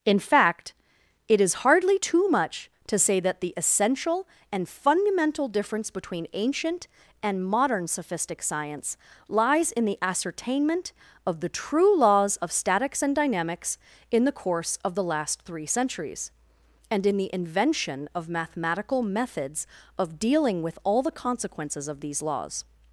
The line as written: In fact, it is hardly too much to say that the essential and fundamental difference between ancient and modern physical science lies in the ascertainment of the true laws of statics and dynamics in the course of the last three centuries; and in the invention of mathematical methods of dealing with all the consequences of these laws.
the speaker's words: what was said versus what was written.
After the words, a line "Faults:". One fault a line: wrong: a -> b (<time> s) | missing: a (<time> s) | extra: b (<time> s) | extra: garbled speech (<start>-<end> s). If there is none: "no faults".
In fact, it is hardly too much to say that the essential and fundamental difference between ancient and modern sophistic science lies in the ascertainment of the true laws of statics and dynamics in the course of the last three centuries; and in the invention of mathematical methods of dealing with all the consequences of these laws.
Faults:
wrong: physical -> sophistic (7.9 s)